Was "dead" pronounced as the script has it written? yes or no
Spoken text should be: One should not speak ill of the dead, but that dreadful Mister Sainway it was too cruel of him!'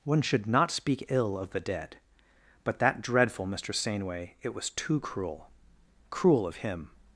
yes